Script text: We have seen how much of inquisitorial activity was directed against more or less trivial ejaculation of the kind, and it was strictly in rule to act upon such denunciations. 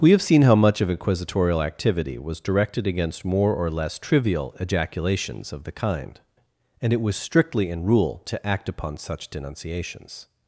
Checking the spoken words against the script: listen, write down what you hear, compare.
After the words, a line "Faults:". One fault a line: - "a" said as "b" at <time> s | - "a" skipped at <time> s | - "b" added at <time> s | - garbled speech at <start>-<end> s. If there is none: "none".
We have seen how much of inquisitorial activity was directed against more or less trivial ejaculations of the kind, and it was strictly in rule to act upon such denunciations.
Faults:
- "ejaculation" said as "ejaculations" at 4.6 s